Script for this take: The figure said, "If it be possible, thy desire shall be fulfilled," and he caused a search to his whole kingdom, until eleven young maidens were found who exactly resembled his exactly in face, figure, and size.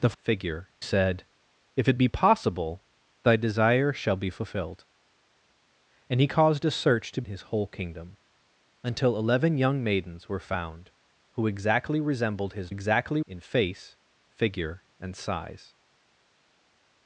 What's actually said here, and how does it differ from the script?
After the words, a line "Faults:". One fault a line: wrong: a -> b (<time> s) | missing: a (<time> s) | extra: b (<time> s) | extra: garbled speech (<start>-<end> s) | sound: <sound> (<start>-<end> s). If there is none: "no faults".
The figure said, "If it be possible, thy desire shall be fulfilled," and he caused a search to his whole kingdom, until eleven young maidens were found who exactly resembled his exactly in face, figure, and size.
Faults:
no faults